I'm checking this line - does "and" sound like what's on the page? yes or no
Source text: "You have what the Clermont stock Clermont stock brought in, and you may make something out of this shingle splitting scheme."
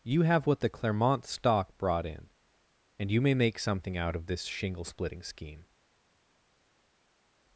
yes